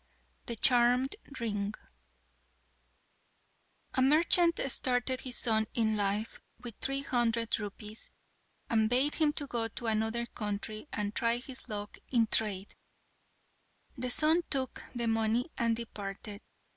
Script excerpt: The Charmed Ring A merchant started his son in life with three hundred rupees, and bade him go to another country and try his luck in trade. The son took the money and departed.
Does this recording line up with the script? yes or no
yes